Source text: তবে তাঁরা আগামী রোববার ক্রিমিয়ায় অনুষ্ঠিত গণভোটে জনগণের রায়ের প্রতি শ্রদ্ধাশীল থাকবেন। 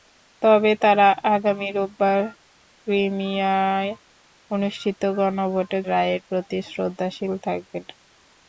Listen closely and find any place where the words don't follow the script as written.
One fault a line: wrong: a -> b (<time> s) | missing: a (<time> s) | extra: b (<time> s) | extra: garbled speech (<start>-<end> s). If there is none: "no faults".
missing: জনগণের (5.8 s)